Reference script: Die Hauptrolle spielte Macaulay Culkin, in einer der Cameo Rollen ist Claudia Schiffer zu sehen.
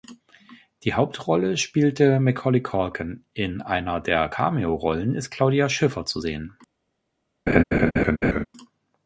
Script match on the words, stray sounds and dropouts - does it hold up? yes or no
no